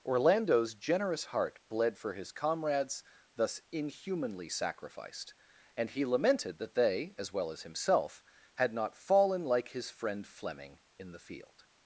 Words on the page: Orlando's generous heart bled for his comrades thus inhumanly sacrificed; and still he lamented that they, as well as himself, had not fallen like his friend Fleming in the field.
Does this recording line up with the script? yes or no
no